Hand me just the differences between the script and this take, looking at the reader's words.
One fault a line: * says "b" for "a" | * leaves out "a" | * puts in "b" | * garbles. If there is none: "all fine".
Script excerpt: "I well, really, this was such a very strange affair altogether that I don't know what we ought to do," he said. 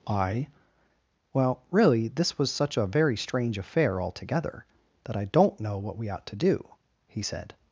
all fine